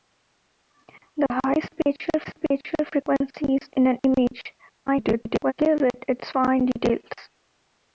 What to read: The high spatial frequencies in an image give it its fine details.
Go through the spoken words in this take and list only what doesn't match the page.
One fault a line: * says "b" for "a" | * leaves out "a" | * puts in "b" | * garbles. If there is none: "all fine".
* puts in "spatial"
* garbles